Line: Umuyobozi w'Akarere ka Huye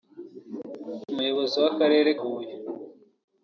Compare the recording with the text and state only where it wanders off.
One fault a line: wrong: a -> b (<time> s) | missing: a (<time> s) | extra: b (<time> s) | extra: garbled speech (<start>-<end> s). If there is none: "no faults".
missing: ka (2.1 s)